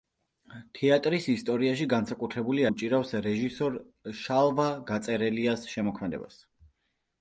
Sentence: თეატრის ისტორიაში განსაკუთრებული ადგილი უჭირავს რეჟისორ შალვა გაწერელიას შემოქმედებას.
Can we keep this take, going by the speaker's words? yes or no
no